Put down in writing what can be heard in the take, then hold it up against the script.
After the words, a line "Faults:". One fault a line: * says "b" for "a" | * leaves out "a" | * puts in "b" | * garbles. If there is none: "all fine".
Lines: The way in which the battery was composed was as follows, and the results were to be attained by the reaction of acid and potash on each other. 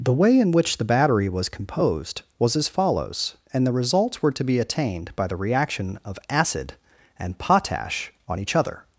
The way in which the battery was composed was as follows, and the results were to be attained by the reaction of acid and potash on each other.
Faults:
all fine